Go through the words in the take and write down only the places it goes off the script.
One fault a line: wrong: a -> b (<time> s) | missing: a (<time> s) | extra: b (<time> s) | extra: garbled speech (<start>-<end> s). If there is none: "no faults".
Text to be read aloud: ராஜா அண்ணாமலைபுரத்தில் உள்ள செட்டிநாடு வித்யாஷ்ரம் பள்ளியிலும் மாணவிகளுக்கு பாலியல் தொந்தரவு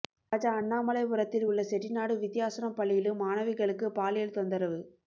no faults